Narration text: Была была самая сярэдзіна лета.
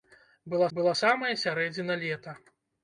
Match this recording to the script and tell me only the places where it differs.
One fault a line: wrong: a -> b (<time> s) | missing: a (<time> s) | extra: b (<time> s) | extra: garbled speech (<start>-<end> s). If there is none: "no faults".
no faults